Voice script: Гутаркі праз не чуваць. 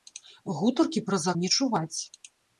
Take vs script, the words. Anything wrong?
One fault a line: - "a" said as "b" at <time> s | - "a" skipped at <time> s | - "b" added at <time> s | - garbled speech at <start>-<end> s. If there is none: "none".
none